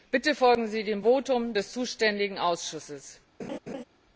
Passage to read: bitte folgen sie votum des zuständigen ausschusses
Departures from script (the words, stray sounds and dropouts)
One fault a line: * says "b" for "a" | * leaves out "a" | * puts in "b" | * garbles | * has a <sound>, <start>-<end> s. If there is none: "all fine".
* puts in "dem"
* has a laugh, 3.4-3.8 s